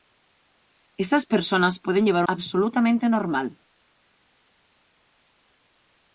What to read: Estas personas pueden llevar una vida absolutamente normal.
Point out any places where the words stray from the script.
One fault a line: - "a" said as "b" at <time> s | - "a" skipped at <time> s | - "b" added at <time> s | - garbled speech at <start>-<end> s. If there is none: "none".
- "una vida" skipped at 2.2 s